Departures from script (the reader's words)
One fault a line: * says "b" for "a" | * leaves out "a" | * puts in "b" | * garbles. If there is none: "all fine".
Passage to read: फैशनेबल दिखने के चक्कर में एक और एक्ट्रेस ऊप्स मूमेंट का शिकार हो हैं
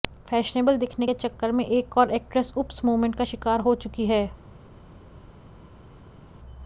* puts in "चुकी"